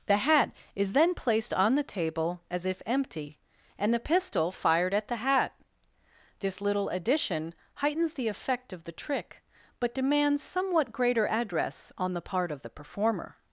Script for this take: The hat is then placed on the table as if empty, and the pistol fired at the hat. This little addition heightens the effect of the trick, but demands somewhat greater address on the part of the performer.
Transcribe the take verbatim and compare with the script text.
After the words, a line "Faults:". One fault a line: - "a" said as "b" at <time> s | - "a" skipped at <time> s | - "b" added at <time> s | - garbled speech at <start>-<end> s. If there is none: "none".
The hat is then placed on the table as if empty, and the pistol fired at the hat. This little addition heightens the effect of the trick, but demands somewhat greater address on the part of the performer.
Faults:
none